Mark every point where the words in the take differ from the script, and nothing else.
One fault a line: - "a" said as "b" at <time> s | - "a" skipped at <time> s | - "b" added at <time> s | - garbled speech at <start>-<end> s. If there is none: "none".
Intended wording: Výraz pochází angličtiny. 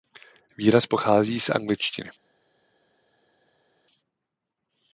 - "z" added at 1.4 s